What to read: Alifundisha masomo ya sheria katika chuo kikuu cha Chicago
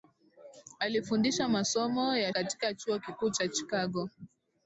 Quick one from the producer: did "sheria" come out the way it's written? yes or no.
no